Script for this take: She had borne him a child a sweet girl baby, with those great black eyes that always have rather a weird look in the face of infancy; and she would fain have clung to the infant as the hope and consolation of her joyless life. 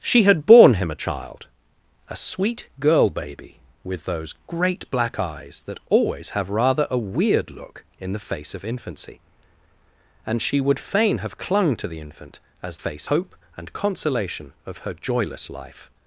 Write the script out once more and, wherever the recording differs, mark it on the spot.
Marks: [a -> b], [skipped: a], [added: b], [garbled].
She had borne him a child a sweet girl baby, with those great black eyes that always have rather a weird look in the face of infancy; and she would fain have clung to the infant as [the -> face] hope and consolation of her joyless life.